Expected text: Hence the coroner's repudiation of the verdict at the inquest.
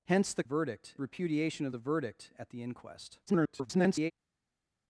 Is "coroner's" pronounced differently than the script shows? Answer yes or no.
yes